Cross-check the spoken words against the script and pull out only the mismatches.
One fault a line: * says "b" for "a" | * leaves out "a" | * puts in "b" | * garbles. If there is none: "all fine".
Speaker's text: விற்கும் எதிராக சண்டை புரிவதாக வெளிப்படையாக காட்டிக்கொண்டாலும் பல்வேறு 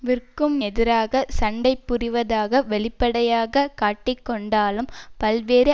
all fine